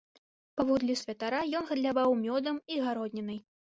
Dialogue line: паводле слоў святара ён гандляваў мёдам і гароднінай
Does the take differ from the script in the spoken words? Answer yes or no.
yes